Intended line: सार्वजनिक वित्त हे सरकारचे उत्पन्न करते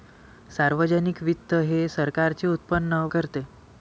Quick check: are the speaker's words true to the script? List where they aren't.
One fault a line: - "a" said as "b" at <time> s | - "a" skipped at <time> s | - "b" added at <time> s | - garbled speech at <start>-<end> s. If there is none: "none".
none